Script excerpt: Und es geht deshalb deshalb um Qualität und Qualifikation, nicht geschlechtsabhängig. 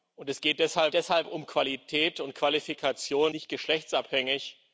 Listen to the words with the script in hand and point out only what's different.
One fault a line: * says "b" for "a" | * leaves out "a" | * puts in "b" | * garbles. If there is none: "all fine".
all fine